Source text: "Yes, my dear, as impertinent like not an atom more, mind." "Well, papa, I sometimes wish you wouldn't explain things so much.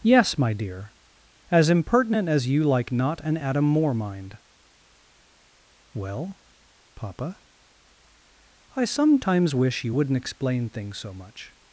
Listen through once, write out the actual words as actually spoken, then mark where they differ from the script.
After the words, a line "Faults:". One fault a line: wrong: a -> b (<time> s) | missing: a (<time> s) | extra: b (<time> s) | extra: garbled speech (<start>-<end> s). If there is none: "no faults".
"Yes, my dear, as impertinent as you like not an atom more, mind." "Well, papa, I sometimes wish you wouldn't explain things so much.
Faults:
extra: as you (2.3 s)